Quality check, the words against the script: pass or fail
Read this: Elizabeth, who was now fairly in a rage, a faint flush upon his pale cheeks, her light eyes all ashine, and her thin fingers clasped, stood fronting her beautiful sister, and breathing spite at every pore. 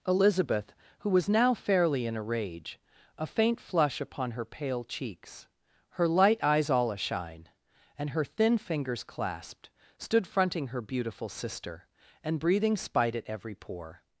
fail